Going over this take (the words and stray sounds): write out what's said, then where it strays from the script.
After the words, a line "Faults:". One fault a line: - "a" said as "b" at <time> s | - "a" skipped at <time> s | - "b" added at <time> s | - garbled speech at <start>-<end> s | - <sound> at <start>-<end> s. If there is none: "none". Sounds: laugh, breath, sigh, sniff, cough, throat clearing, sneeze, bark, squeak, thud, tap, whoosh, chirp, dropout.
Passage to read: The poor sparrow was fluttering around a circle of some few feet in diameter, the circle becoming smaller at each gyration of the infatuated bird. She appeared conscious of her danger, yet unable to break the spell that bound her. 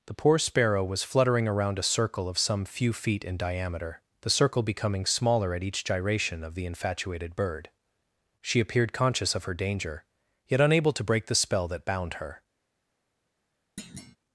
The poor sparrow was fluttering around a circle of some few feet in diameter, the circle becoming smaller at each gyration of the infatuated bird. She appeared conscious of her danger, yet unable to break the spell that bound her.
Faults:
- thud at 13.8-14.2 s